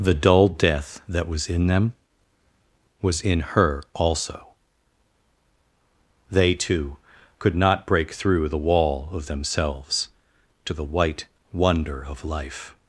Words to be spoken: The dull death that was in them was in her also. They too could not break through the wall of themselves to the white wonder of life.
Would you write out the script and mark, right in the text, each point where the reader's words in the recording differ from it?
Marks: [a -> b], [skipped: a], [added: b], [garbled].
The dull death that was in them was in her also. They too could not break through the wall of themselves to the white wonder of life.